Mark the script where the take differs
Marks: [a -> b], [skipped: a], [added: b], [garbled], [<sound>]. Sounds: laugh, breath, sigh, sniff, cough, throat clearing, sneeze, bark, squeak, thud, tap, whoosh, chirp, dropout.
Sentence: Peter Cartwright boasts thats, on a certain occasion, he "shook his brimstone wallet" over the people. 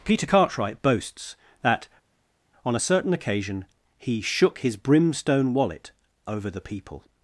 Peter Cartwright boasts [thats, -> that] on a certain occasion, he "shook his brimstone wallet" over the people.